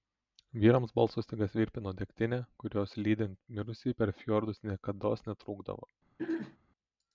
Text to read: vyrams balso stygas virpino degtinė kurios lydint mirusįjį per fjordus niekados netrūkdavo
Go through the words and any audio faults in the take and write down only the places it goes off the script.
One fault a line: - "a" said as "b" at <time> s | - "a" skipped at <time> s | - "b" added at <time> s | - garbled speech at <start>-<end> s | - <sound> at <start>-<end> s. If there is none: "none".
- throat clearing at 6.2-6.6 s